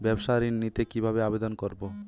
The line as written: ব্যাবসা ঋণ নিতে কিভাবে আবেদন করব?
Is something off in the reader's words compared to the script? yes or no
no